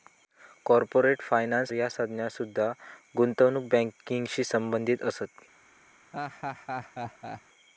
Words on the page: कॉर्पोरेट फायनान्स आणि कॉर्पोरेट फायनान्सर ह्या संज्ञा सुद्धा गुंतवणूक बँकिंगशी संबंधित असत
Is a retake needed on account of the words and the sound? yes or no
yes